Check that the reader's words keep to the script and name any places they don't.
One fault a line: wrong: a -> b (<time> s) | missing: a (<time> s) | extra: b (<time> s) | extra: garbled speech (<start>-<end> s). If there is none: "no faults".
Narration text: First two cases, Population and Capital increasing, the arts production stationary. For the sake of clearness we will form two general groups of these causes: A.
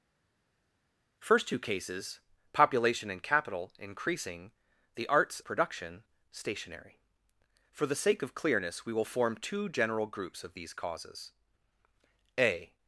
no faults